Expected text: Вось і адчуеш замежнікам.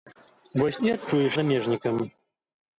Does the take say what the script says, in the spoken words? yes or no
yes